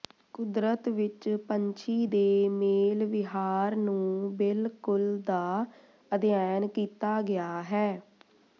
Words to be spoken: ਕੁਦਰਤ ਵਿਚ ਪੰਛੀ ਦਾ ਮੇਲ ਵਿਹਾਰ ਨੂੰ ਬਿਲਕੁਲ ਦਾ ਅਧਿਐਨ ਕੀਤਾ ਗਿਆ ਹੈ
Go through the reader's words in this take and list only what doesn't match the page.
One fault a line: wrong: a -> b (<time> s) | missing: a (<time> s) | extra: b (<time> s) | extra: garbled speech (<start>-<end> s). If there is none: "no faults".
wrong: ਦਾ -> ਦੇ (2.1 s)